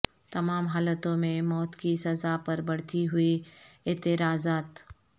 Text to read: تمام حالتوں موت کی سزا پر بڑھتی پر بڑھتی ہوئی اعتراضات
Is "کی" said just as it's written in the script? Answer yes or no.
yes